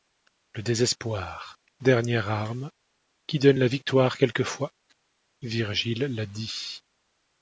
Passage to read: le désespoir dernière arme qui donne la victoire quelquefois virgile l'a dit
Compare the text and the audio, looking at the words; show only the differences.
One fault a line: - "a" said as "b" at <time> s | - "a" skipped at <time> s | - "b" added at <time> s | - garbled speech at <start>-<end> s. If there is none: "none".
none